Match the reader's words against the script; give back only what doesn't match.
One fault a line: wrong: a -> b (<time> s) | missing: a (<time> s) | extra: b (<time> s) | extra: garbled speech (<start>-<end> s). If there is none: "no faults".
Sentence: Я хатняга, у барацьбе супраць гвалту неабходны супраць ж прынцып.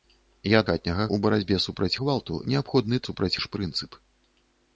no faults